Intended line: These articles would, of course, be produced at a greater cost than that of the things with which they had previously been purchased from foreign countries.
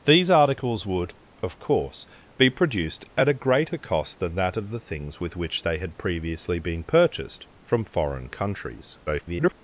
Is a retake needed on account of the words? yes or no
yes